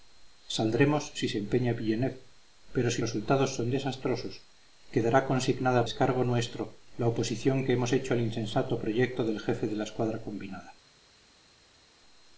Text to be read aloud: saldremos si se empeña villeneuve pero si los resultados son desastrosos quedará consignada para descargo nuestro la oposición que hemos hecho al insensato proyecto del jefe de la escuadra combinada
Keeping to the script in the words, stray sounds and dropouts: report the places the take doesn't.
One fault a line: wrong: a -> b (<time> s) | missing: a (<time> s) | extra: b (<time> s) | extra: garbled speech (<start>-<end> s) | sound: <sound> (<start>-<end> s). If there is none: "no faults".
missing: los (3.0 s)
missing: para (5.8 s)